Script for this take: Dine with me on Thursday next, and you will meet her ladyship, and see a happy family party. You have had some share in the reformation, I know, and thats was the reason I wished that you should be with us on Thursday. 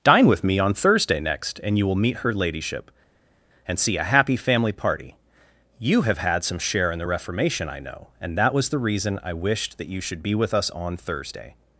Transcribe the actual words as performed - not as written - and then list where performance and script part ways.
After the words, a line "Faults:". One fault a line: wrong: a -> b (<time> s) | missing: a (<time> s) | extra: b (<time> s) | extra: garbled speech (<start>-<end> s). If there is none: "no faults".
Dine with me on Thursday next, and you will meet her ladyship, and see a happy family party. You have had some share in the reformation, I know, and that was the reason I wished that you should be with us on Thursday.
Faults:
wrong: thats -> that (8.4 s)